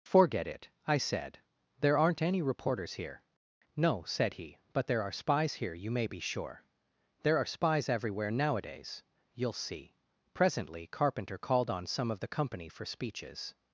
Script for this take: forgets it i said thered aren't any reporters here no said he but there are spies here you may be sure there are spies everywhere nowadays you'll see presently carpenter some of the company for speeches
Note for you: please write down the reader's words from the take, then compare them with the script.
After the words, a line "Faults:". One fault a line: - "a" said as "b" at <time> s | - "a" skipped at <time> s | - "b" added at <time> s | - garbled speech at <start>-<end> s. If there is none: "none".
forget it i said there aren't any reporters here no said he but there are spies here you may be sure there are spies everywhere nowadays you'll see presently carpenter called on some of the company for speeches
Faults:
- "forgets" said as "forget" at 0.0 s
- "thered" said as "there" at 1.8 s
- "called on" added at 11.4 s